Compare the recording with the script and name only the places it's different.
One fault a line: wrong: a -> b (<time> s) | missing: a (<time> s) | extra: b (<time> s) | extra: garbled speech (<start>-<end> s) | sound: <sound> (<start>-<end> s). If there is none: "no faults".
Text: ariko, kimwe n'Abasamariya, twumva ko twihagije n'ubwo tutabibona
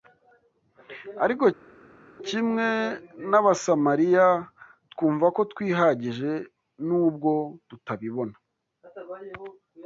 no faults